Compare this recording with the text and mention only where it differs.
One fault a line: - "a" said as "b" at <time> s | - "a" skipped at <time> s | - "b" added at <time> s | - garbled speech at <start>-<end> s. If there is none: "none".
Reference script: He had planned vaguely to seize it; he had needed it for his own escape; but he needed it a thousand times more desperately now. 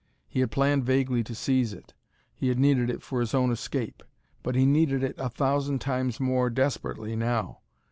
none